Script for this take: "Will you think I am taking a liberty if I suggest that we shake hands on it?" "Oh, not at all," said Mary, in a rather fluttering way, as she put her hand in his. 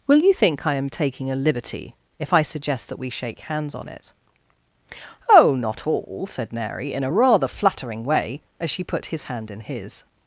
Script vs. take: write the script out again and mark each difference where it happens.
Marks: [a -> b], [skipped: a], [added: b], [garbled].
"Will you think I am taking a liberty if I suggest that we shake hands on it?" "Oh, not [skipped: at] all," said Mary, in a rather fluttering way, as she put [her -> his] hand in his.